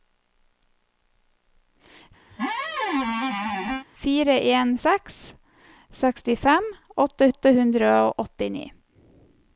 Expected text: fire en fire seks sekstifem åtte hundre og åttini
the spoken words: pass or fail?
fail